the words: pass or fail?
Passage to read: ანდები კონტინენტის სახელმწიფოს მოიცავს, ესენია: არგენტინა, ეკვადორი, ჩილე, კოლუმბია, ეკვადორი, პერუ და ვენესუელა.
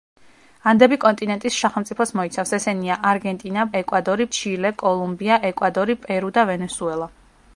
pass